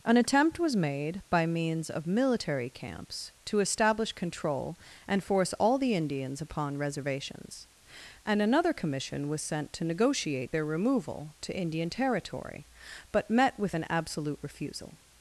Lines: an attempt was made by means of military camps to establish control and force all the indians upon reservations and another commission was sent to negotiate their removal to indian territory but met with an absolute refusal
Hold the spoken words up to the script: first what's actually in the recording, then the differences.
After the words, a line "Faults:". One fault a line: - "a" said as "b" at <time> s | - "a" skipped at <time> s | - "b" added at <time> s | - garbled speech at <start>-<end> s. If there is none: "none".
an attempt was made by means of military camps to establish control and force all the indians upon reservations and another commission was sent to negotiate their removal to indian territory but met with an absolute refusal
Faults:
none